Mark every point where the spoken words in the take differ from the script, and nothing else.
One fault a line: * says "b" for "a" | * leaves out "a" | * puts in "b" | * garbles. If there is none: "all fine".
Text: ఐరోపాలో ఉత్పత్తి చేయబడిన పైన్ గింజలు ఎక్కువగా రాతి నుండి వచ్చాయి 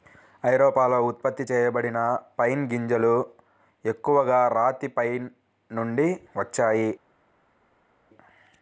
* puts in "పైన్"